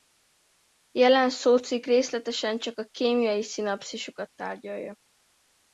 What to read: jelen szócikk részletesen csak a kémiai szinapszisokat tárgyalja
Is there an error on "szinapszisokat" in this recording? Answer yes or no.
no